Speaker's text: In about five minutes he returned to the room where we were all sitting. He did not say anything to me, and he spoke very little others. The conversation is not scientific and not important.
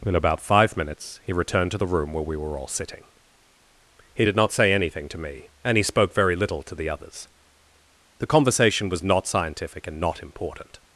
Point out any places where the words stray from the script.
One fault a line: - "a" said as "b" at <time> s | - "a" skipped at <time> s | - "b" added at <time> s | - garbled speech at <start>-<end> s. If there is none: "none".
- "to the" added at 6.6 s
- "is" said as "was" at 8.9 s